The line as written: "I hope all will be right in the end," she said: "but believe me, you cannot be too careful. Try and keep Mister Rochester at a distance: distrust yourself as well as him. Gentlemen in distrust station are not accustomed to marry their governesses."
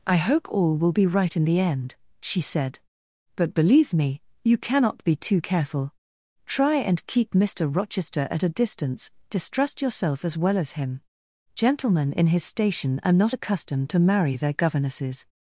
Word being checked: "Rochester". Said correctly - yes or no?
yes